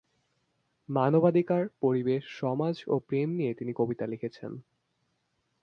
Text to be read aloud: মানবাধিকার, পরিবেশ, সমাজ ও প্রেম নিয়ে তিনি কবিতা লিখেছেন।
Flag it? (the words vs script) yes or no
no